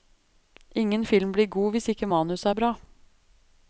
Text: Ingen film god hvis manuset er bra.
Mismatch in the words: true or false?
true